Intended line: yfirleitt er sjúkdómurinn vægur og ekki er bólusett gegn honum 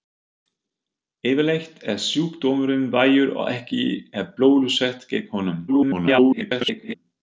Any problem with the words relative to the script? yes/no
yes